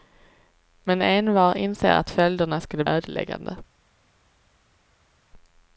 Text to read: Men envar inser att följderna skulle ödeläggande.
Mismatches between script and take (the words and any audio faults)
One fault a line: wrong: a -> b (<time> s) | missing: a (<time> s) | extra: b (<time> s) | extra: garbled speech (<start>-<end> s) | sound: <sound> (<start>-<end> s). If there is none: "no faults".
no faults